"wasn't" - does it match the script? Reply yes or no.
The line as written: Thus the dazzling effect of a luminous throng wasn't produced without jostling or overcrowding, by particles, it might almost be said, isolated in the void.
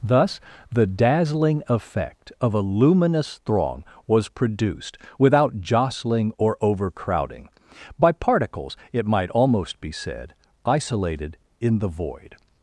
no